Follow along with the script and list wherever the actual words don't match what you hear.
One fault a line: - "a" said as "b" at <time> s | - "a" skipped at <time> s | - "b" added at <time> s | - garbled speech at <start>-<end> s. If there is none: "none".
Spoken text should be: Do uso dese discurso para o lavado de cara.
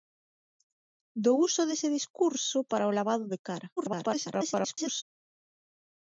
- garbled speech at 3.8-5.0 s